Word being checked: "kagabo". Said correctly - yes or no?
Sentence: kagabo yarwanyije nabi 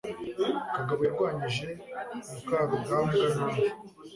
yes